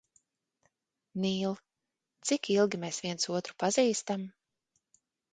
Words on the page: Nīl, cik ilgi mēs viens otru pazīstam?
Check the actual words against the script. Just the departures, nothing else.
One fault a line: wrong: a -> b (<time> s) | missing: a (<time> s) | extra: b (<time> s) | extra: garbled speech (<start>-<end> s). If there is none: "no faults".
no faults